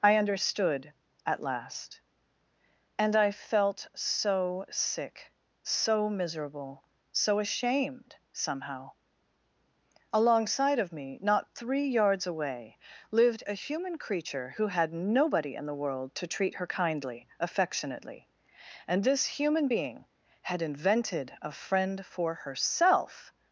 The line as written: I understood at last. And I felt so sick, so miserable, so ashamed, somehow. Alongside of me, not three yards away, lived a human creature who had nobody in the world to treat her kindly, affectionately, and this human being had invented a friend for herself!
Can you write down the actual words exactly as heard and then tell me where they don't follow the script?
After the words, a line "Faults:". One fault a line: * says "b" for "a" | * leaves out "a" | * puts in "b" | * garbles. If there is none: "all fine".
I understood at last. And I felt so sick, so miserable, so ashamed, somehow. Alongside of me, not three yards away, lived a human creature who had nobody in the world to treat her kindly, affectionately, and this human being had invented a friend for herself!
Faults:
all fine